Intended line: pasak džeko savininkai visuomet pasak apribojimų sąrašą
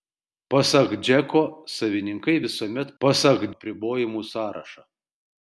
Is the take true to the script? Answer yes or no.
yes